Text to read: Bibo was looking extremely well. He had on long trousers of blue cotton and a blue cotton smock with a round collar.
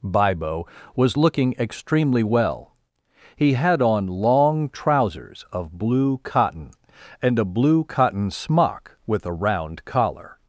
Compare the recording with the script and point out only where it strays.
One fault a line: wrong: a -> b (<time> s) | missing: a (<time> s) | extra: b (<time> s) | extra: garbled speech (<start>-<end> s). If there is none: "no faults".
no faults